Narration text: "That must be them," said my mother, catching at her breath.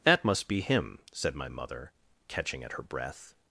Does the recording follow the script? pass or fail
fail